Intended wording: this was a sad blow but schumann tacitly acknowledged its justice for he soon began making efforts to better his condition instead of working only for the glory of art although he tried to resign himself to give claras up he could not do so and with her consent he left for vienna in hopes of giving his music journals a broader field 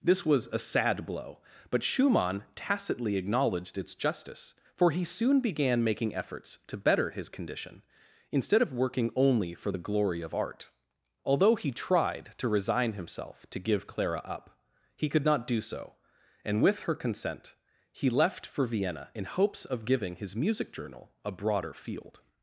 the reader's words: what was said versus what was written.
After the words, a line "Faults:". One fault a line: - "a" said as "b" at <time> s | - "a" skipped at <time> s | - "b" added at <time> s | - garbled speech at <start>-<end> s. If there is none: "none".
this was a sad blow but schumann tacitly acknowledged its justice for he soon began making efforts to better his condition instead of working only for the glory of art although he tried to resign himself to give clara up he could not do so and with her consent he left for vienna in hopes of giving his music journal a broader field
Faults:
- "claras" said as "clara" at 13.9 s
- "journals" said as "journal" at 20.7 s